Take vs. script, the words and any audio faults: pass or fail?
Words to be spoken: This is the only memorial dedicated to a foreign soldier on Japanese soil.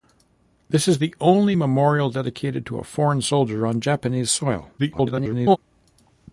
fail